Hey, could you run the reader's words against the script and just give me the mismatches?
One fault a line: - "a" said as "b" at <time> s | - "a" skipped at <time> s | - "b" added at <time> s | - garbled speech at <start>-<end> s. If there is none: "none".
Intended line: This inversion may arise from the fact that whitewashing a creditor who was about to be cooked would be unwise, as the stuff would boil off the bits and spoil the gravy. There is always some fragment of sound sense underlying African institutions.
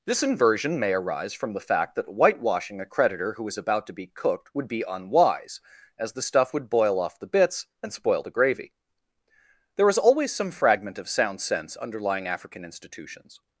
- "was" said as "is" at 3.5 s